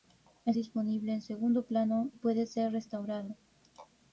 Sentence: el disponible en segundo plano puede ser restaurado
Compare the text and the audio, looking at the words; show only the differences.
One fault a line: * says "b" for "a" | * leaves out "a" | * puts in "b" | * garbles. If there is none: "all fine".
all fine